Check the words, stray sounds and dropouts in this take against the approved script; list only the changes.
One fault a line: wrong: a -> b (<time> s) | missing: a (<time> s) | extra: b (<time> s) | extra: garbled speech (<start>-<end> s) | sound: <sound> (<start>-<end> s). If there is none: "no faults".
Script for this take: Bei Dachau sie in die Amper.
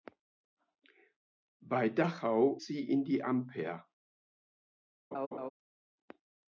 sound: laugh (5.1-5.5 s)